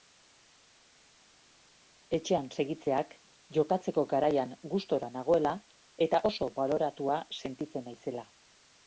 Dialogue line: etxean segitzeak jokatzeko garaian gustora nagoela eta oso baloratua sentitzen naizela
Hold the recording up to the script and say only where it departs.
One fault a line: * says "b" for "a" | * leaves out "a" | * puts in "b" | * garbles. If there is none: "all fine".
all fine